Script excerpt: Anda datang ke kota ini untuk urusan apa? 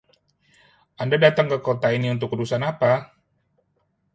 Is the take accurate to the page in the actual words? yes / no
yes